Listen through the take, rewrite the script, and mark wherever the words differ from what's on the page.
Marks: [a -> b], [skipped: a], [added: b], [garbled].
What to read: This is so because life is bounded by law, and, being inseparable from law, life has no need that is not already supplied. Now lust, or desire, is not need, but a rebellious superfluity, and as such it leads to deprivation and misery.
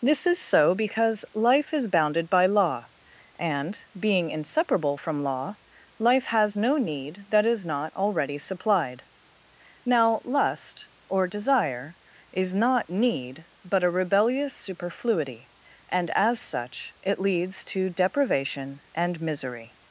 This is so because life is bounded by law, and, being inseparable from law, life has no need that is not already supplied. Now lust, or desire, is not need, but a rebellious superfluity, and as such it leads to deprivation and misery.